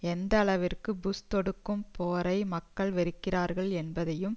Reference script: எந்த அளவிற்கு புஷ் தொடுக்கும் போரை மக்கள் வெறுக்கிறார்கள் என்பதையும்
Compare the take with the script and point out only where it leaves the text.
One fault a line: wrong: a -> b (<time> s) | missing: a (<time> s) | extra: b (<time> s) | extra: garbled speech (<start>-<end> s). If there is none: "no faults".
no faults